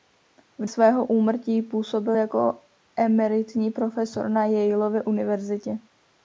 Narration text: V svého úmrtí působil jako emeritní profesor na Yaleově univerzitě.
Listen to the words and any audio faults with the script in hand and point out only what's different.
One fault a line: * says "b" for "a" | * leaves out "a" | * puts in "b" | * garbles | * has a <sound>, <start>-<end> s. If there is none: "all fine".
all fine